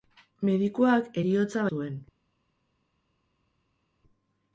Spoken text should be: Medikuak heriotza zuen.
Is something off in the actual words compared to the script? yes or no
no